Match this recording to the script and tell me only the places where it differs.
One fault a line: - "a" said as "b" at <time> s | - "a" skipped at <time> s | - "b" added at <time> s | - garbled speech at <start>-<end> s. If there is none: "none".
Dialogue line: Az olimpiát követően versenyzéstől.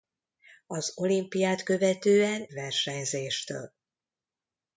none